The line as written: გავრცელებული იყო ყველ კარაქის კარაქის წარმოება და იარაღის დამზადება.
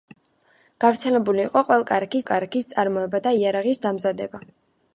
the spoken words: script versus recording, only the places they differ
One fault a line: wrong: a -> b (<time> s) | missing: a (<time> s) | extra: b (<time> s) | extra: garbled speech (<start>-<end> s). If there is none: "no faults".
no faults